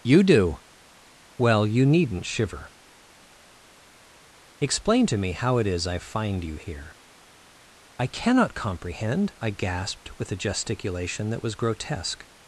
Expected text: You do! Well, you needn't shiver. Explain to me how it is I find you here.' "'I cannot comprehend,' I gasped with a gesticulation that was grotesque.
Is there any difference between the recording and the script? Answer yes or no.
no